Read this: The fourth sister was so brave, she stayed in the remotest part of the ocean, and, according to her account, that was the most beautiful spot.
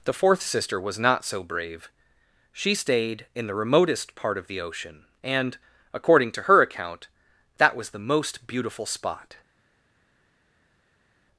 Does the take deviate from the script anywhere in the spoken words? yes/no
yes